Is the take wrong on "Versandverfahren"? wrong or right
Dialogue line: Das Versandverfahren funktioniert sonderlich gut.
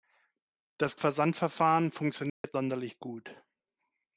right